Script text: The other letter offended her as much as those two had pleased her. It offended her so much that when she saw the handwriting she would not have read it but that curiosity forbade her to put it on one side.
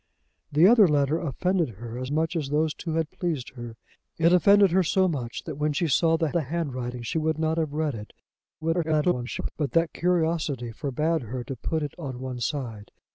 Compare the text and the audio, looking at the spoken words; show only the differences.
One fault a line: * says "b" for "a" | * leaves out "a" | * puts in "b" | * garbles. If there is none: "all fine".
* puts in "the"
* garbles